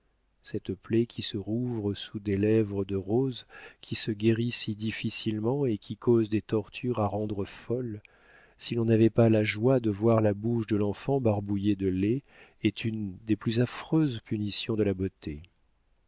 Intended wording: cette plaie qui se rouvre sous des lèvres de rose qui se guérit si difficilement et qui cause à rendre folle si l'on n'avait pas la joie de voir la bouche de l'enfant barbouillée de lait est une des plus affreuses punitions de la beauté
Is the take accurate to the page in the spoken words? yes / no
no